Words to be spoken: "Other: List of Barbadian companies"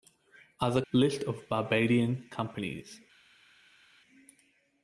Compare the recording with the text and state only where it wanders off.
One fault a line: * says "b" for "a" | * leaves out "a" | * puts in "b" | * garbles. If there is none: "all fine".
all fine